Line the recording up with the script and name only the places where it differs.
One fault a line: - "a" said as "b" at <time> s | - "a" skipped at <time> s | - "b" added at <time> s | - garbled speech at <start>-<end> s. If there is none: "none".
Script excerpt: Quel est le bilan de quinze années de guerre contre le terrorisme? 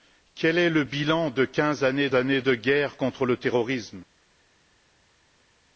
- "années" added at 2.1 s